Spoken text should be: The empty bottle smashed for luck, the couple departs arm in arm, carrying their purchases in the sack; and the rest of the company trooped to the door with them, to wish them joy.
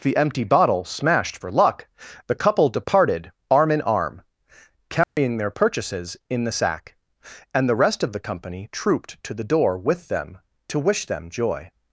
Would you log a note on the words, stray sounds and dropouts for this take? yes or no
yes